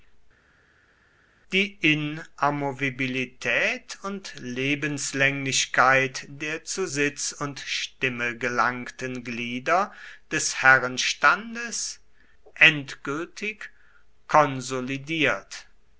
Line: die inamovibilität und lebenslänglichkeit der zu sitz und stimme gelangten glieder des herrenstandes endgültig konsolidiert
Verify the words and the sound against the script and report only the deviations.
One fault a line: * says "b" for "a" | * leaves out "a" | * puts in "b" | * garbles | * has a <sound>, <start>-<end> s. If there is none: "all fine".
all fine